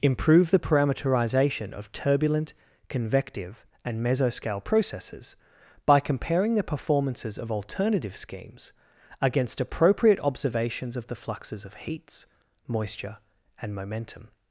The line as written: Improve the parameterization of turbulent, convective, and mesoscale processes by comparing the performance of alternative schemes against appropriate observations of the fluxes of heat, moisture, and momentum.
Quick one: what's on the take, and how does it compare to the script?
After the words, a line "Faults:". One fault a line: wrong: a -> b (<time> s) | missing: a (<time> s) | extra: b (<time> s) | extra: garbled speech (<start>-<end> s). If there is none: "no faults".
Improve the parameterization of turbulent, convective, and mesoscale processes by comparing the performances of alternative schemes against appropriate observations of the fluxes of heats, moisture, and momentum.
Faults:
wrong: performance -> performances (6.6 s)
wrong: heat -> heats (11.8 s)